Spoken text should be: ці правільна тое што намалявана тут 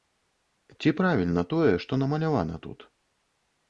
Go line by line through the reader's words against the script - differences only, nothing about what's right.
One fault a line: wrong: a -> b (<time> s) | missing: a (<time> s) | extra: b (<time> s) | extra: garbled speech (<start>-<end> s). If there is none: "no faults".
no faults